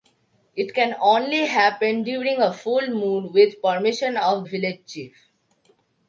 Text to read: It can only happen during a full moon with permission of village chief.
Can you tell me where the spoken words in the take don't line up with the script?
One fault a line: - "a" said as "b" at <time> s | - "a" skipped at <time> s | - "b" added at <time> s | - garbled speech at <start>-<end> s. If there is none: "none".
none